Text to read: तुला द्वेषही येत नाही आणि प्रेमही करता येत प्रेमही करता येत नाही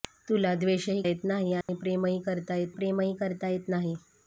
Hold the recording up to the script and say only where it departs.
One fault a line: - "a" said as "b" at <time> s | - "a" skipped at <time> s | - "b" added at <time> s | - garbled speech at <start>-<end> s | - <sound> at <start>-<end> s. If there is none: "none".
- dropout at 1.6-1.7 s